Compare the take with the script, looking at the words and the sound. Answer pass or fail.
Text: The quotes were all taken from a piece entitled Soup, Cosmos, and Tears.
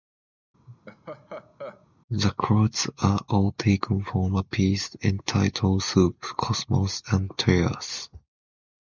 fail